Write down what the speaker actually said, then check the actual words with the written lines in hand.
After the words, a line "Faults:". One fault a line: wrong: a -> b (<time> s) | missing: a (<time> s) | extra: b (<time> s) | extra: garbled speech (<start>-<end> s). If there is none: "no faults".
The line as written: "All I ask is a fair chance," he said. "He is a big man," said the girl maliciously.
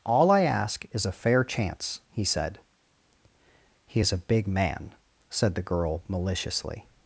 "All I ask is a fair chance," he said. "He is a big man," said the girl maliciously.
Faults:
no faults